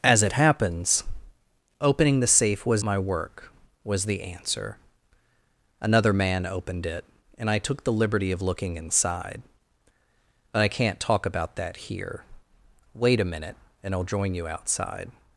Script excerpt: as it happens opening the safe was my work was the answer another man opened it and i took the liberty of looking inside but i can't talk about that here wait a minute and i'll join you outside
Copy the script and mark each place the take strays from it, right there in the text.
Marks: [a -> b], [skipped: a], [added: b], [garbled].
as it happens opening the safe was my work was the answer another man opened it and i took the liberty of looking inside but i can't talk about that here wait a minute and i'll join you outside